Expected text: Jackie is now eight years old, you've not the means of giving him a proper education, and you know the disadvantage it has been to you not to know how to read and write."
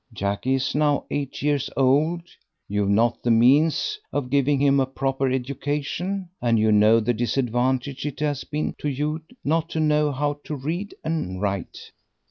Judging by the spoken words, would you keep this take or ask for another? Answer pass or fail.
pass